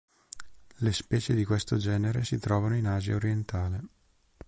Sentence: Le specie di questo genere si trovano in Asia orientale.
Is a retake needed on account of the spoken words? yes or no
no